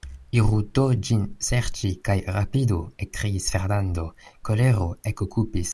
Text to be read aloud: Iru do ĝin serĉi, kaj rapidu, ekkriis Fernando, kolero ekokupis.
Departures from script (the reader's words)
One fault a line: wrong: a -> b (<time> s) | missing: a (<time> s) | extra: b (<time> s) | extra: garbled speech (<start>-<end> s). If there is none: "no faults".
no faults